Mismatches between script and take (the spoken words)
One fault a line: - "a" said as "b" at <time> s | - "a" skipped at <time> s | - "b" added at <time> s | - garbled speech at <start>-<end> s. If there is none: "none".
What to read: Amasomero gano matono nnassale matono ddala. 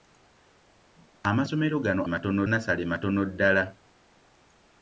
none